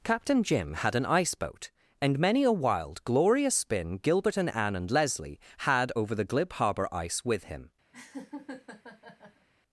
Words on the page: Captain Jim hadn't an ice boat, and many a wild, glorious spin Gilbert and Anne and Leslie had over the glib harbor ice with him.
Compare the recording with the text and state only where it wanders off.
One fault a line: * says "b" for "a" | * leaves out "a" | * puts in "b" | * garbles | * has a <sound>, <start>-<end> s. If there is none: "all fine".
* says "had" for "hadn't"
* has a laugh, 7.9-9.5 s